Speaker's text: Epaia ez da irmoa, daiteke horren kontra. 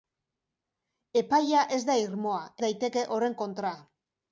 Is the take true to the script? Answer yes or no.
yes